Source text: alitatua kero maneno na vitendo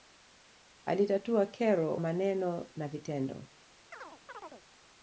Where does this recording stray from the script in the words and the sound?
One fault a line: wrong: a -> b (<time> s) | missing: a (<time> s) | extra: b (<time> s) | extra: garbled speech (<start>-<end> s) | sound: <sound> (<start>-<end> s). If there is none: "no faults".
sound: chirp (3.9-4.6 s)